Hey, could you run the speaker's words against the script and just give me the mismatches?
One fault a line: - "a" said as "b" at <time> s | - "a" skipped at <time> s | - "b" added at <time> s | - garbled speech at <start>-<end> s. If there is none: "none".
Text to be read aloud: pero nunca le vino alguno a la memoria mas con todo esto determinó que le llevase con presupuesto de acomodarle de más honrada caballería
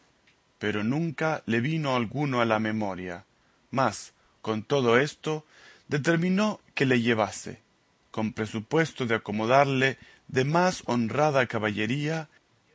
none